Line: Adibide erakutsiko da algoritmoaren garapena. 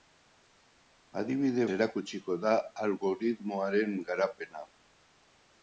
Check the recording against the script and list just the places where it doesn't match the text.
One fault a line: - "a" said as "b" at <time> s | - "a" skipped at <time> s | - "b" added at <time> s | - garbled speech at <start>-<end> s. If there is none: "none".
none